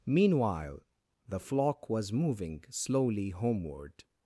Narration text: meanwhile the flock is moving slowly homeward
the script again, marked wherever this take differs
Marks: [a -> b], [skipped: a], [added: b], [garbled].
meanwhile the flock [is -> was] moving slowly homeward